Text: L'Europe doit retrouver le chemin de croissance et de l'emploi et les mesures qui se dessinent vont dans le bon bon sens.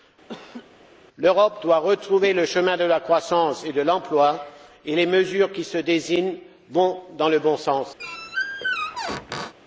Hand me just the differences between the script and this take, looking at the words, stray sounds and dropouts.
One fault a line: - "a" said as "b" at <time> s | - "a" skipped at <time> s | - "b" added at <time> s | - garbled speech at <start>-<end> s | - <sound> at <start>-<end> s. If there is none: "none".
- laugh at 0.3-0.8 s
- "la" added at 2.8 s
- "bon" skipped at 7.6 s
- squeak at 8.0-9.5 s